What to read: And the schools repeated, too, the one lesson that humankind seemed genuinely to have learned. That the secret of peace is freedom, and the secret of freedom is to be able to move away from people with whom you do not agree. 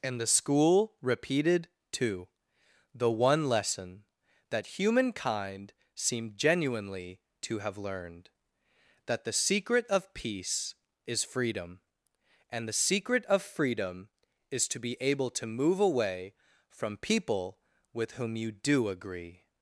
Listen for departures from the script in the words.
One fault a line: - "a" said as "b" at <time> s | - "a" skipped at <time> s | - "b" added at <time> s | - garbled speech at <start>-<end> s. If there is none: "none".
- "schools" said as "school" at 0.3 s
- "not" skipped at 18.9 s